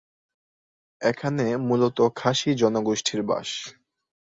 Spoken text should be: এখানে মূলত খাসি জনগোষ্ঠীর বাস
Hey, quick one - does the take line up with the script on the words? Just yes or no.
yes